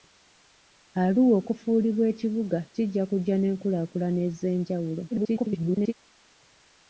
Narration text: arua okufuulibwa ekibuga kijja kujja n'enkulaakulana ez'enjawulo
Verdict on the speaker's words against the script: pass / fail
fail